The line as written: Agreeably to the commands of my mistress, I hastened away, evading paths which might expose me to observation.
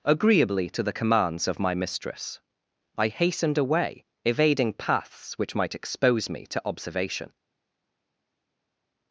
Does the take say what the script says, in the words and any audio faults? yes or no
yes